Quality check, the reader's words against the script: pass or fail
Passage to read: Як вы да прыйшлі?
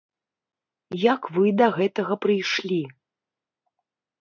fail